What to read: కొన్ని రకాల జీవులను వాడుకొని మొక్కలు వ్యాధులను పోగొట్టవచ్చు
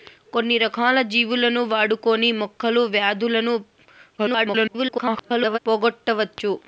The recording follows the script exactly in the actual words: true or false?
false